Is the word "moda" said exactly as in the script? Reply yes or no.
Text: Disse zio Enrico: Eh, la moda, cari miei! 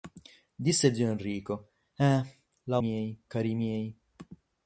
no